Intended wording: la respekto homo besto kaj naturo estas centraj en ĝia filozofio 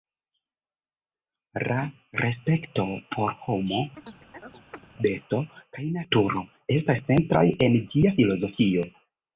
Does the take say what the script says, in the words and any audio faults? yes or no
no